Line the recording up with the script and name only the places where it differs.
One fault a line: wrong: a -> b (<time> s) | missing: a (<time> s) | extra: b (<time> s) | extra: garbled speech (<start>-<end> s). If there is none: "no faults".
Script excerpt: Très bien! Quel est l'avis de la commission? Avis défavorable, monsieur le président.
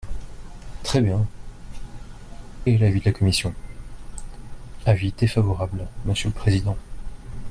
missing: Quel (1.3 s)